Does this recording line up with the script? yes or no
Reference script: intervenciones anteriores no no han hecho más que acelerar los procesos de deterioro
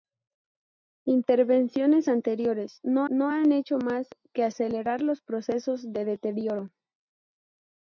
yes